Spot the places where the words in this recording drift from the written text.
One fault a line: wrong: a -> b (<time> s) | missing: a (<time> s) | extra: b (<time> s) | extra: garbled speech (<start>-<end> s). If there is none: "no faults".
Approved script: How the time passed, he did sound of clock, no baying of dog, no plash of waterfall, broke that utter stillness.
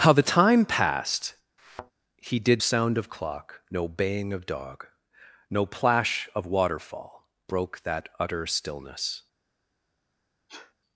no faults